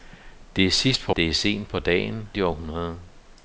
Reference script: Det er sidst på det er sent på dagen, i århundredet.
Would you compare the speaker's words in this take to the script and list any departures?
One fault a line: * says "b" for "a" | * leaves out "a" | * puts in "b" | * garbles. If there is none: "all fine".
all fine